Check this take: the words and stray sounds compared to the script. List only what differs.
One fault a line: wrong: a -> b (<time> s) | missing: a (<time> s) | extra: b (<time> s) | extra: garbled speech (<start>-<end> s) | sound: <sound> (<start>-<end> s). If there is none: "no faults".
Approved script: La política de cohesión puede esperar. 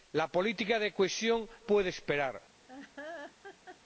sound: laugh (2.7-3.8 s)